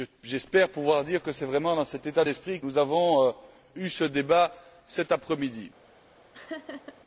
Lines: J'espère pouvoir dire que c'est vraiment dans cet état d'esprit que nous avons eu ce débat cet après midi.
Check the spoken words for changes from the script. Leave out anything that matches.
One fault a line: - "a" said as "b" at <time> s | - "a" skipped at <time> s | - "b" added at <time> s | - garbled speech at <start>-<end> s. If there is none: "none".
- "que" skipped at 2.6 s